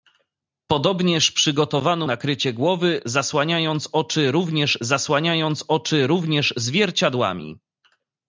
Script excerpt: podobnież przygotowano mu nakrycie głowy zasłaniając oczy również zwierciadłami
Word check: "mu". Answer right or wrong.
wrong